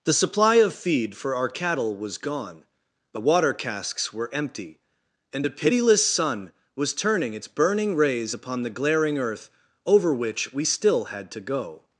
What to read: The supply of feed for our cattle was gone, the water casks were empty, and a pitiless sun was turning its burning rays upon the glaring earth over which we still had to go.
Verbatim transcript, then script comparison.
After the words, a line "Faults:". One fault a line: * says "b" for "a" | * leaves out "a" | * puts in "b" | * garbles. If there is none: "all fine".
The supply of feed for our cattle was gone, the water casks were empty, and a pitiless sun was turning its burning rays upon the glaring earth over which we still had to go.
Faults:
all fine